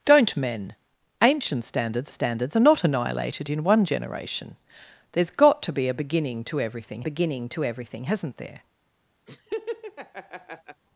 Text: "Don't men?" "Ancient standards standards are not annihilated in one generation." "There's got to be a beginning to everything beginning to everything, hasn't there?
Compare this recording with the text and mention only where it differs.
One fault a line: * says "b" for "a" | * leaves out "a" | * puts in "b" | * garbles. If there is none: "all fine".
all fine